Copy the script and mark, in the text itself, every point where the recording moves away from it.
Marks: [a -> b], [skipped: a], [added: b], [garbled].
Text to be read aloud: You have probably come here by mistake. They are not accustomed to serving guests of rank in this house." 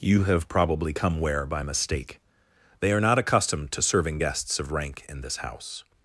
You have probably come [here -> where] by mistake. They are not accustomed to serving guests of rank in this house."